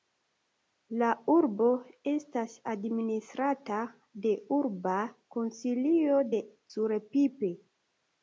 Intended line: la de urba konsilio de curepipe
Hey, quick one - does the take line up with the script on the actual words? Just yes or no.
no